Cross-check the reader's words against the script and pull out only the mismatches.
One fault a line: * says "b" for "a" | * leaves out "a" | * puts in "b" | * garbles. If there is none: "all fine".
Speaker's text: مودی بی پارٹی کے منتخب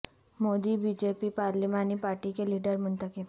* puts in "جے پی پارلیمانی"
* puts in "لیڈر"